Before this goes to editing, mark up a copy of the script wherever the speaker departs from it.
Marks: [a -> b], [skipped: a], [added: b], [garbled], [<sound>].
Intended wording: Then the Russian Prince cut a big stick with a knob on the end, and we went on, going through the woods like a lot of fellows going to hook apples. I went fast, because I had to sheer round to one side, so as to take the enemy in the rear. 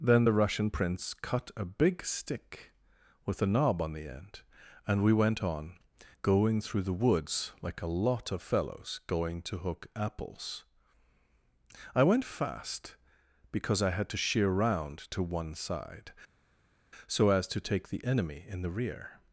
Then the Russian Prince cut a big stick with a knob on the end, and we went on, going through the woods like a lot of fellows going to hook apples. I went fast, because I had to sheer round to one side, so as to take the enemy in the rear.